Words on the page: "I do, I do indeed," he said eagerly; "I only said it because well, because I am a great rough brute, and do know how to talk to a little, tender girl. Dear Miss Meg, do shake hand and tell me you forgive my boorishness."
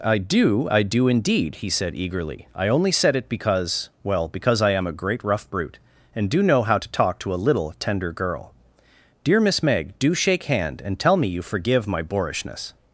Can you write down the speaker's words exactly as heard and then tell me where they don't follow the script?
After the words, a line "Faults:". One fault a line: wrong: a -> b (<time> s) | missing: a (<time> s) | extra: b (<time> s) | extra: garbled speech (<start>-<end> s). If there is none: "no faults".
"I do, I do indeed," he said eagerly; "I only said it because well, because I am a great rough brute, and do know how to talk to a little, tender girl. Dear Miss Meg, do shake hand and tell me you forgive my boorishness."
Faults:
no faults